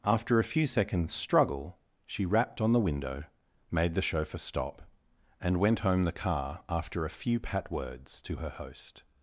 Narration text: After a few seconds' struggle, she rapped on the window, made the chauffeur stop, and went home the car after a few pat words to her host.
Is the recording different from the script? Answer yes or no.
no